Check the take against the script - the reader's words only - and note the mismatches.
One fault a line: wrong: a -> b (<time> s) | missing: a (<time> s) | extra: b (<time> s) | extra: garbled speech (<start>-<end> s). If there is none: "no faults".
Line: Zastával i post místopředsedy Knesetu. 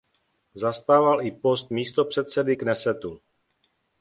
no faults